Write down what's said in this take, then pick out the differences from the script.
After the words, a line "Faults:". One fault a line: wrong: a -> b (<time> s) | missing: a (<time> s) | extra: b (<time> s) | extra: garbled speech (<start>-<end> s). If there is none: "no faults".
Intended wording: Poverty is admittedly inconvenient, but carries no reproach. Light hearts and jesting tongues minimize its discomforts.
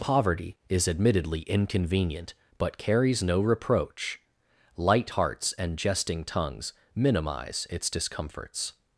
Poverty is admittedly inconvenient, but carries no reproach. Light hearts and jesting tongues minimize its discomforts.
Faults:
no faults